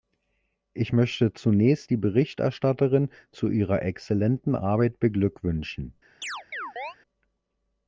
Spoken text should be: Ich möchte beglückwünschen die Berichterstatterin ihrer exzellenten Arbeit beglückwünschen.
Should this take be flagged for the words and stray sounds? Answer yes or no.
yes